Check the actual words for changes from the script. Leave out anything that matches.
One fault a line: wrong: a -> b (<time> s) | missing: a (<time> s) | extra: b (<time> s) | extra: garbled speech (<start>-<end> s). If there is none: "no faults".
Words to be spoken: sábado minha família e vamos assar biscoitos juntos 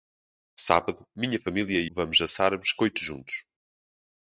no faults